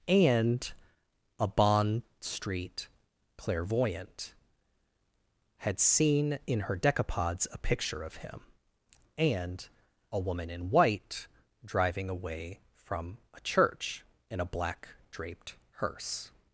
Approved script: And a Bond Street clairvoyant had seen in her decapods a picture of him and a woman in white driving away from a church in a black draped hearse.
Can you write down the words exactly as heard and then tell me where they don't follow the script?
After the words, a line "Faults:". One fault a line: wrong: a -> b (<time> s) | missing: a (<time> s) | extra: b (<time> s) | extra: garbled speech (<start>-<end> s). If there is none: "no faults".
And a Bond Street clairvoyant had seen in her decapods a picture of him and a woman in white driving away from a church in a black draped hearse.
Faults:
no faults